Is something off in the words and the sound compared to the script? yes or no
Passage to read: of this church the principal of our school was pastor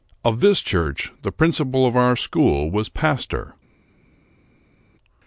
no